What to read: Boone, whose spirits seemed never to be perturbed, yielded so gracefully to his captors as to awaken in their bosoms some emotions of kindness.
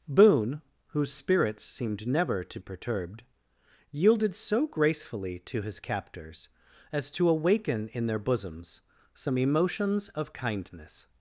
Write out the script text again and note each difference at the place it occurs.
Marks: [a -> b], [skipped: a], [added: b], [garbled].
Boone, whose spirits seemed never to [skipped: be] perturbed, yielded so gracefully to his captors as to awaken in their bosoms some emotions of kindness.